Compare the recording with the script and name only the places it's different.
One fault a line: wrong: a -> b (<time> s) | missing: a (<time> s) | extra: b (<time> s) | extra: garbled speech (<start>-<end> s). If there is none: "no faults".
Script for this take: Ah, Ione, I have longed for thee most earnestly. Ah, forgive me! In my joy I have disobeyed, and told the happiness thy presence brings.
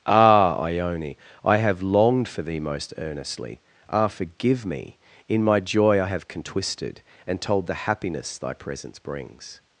wrong: disobeyed -> contwisted (6.3 s)